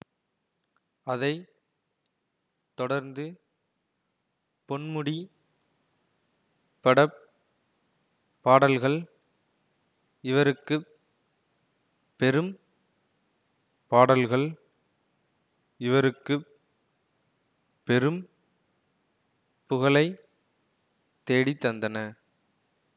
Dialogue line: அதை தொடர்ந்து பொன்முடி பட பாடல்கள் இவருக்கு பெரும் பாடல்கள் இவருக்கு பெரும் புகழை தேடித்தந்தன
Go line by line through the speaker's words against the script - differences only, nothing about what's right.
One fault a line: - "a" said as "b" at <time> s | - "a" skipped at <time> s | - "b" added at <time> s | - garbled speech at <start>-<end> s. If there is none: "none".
none